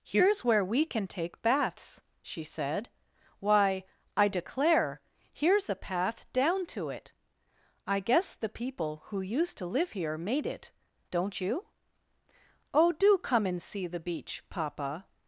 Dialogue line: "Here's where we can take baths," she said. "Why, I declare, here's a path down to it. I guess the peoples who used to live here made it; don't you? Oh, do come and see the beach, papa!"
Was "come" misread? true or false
false